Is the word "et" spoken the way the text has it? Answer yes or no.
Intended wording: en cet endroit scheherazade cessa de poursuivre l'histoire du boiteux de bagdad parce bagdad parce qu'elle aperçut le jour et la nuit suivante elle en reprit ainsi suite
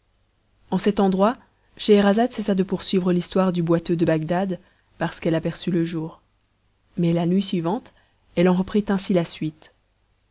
no